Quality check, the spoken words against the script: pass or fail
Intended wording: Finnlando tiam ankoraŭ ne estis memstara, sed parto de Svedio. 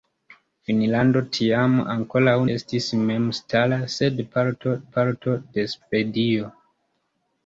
fail